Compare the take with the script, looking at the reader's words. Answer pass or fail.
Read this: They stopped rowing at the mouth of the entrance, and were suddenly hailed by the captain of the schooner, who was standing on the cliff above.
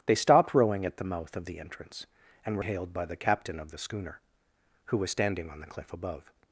fail